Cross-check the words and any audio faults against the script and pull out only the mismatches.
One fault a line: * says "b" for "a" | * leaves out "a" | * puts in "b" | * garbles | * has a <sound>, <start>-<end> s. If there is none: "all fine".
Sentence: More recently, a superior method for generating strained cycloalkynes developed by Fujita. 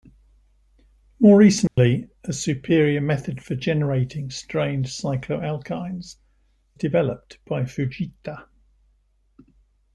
* has a dropout, 1.7-1.8 s